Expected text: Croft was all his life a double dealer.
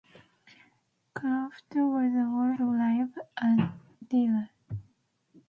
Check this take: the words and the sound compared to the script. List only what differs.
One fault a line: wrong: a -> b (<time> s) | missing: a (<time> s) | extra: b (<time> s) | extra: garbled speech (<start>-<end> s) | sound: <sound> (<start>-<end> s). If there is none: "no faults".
missing: his (2.5 s)
missing: double (3.7 s)